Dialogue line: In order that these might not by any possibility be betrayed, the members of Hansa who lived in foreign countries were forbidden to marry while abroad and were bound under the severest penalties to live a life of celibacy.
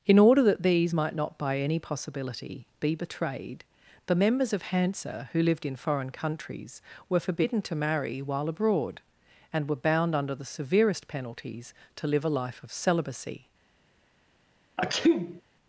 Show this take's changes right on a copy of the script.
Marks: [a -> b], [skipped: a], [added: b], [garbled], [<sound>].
In order that these might not by any possibility be betrayed, the members of Hansa who lived in foreign countries were forbidden to marry while abroad and were bound under the severest penalties to live a life of celibacy. [sneeze]